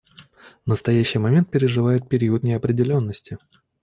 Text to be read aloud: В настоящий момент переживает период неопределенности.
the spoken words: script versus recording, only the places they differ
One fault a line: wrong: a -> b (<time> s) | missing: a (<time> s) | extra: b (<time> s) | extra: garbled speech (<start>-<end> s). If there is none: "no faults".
no faults